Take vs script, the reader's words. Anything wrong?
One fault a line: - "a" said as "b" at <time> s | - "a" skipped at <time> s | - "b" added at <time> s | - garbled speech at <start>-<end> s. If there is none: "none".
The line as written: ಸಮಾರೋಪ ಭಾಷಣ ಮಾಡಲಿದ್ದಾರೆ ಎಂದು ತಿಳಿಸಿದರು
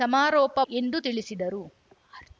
- "ಭಾಷಣ ಮಾಡಲಿದ್ದಾರೆ" skipped at 0.6 s